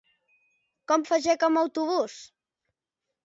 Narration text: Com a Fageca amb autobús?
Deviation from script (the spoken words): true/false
false